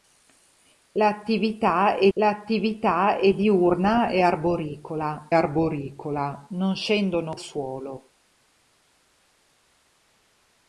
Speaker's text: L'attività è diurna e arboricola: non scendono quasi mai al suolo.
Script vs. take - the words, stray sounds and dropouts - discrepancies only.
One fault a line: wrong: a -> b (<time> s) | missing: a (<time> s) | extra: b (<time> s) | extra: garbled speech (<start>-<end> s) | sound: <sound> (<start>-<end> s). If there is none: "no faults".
extra: l'attività è (2.1 s)
extra: arboricola (5.3 s)
missing: quasi mai al (7.4 s)